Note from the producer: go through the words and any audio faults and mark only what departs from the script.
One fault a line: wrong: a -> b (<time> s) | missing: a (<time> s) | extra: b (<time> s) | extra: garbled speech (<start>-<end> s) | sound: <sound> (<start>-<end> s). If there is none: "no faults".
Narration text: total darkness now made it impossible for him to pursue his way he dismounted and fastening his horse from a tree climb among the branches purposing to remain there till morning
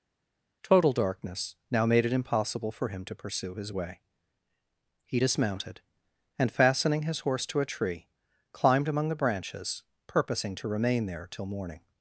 wrong: from -> to (7.5 s)
wrong: climb -> climbed (8.5 s)